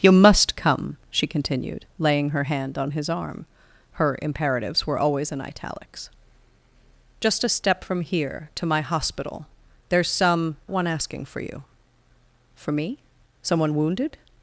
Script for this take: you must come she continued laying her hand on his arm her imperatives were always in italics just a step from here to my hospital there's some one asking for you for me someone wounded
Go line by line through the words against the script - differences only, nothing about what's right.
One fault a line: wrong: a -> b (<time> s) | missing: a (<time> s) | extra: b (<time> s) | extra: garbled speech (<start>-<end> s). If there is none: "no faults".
no faults